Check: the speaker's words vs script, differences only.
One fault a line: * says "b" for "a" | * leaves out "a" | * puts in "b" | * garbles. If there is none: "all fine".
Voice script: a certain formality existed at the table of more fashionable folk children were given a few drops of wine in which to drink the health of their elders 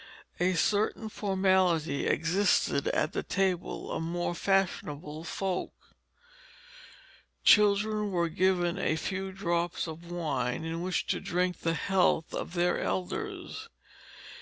all fine